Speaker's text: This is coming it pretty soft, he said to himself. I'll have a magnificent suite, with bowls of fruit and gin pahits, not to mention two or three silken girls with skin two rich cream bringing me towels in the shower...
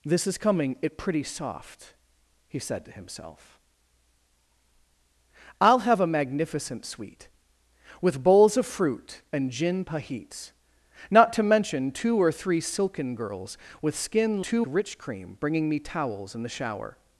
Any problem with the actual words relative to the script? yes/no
no